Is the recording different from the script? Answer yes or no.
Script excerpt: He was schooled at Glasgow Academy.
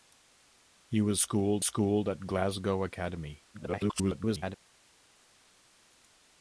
yes